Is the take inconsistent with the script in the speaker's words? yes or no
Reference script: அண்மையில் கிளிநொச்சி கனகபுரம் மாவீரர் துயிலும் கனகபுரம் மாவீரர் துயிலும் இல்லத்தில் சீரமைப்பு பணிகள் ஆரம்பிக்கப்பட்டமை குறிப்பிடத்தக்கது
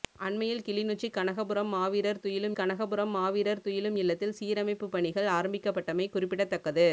no